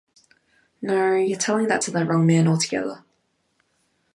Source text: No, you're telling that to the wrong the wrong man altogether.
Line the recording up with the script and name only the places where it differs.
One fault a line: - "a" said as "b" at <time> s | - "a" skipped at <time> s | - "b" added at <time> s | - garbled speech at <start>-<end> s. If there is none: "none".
- "the wrong" skipped at 2.2 s